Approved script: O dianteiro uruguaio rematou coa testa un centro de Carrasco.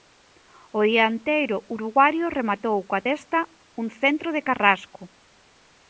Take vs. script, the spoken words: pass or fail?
pass